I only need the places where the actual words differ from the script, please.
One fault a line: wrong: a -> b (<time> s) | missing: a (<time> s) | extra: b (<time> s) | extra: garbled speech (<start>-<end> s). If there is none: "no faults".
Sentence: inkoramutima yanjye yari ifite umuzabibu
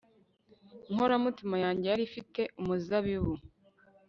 no faults